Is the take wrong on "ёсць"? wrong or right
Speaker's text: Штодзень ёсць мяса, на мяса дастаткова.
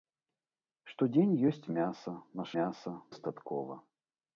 right